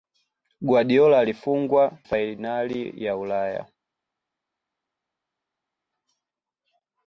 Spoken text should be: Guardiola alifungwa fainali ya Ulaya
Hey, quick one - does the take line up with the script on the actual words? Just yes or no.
yes